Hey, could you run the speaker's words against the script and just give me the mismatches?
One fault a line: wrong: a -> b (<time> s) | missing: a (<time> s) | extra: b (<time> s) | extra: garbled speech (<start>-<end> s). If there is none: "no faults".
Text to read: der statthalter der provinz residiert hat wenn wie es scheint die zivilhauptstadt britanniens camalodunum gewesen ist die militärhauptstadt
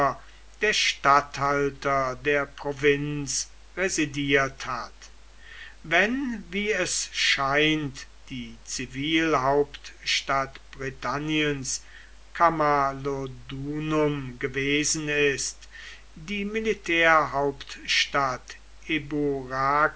no faults